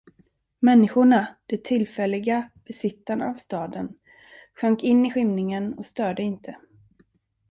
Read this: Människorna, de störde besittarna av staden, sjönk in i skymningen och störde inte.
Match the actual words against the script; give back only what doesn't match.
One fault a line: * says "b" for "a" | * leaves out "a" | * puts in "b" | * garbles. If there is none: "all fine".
* says "tillfälliga" for "störde"